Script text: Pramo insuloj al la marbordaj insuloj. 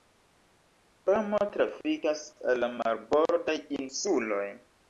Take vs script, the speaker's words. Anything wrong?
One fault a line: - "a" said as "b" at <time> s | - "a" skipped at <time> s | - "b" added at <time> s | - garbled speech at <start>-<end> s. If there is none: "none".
- "insuloj" said as "trafikas" at 1.6 s